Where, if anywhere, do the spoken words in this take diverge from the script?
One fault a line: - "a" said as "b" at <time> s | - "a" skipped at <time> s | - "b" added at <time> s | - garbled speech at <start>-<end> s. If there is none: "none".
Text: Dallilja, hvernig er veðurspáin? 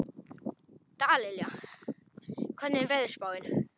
none